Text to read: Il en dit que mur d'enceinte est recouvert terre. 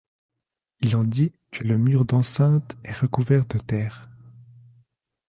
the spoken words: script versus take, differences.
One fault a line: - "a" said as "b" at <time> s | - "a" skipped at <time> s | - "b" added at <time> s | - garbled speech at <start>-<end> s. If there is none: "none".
- "le" added at 1.6 s
- "de" added at 3.5 s